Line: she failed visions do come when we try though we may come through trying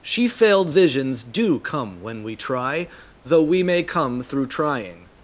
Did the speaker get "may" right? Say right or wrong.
right